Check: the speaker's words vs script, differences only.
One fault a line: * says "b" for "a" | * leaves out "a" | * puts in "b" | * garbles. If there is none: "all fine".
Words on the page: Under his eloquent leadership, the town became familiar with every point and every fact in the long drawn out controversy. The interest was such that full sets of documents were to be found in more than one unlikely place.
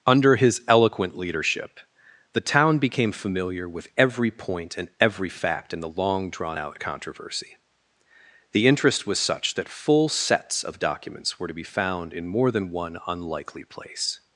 all fine